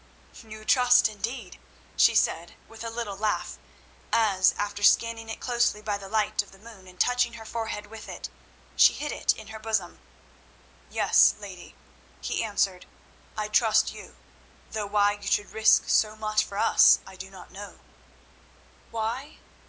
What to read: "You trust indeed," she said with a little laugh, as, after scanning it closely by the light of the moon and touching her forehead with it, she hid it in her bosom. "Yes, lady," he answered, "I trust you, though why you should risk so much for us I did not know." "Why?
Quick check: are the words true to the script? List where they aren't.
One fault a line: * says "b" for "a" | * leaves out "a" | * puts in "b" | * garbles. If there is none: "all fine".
* says "do" for "did"